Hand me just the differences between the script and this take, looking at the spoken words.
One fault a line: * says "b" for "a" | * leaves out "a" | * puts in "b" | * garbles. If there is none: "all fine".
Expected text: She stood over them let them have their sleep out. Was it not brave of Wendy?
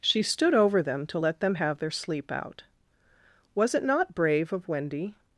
* puts in "to"